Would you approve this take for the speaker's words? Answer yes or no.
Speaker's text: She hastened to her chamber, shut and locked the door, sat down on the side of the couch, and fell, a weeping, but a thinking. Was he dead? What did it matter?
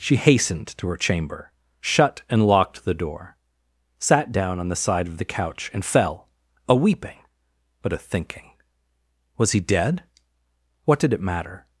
yes